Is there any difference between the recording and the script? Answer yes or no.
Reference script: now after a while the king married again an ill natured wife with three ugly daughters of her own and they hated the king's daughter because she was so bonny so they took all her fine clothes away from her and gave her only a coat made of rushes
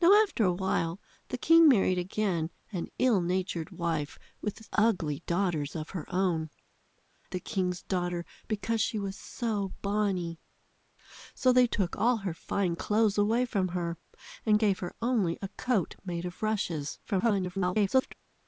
yes